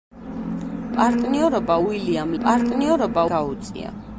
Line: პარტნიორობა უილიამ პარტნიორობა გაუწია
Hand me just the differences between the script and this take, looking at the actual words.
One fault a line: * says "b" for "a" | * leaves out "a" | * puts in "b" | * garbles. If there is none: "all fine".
all fine